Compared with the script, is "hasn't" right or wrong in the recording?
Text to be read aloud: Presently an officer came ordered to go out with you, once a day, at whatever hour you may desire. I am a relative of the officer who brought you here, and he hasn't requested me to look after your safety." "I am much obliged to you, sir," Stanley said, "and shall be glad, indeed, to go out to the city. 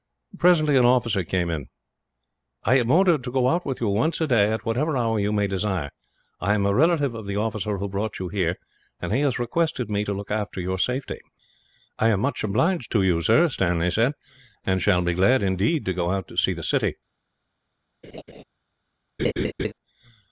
wrong